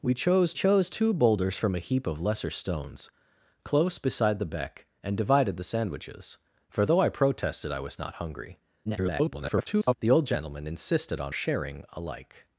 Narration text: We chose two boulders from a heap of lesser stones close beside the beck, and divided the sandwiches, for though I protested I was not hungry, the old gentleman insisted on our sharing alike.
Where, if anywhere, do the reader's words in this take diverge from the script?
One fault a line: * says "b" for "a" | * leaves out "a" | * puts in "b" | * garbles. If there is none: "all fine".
* puts in "chose"
* garbles
* leaves out "our"